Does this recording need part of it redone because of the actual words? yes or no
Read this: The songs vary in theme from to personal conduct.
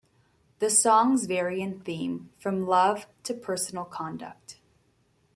yes